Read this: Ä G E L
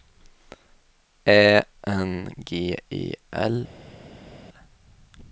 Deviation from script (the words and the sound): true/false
true